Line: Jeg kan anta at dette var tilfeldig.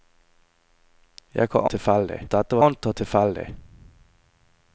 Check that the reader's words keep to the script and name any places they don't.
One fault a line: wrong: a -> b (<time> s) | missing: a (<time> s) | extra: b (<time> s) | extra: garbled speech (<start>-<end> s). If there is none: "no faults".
wrong: anta -> tilfeldig (1.7 s)
wrong: var -> anta (2.7 s)